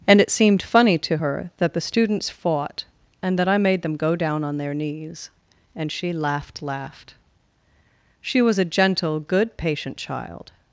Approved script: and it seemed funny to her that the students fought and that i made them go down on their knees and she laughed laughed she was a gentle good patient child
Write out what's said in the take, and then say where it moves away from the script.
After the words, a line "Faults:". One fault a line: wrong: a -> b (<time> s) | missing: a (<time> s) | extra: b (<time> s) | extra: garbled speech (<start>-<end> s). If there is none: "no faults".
and it seemed funny to her that the students fought and that i made them go down on their knees and she laughed laughed she was a gentle good patient child
Faults:
no faults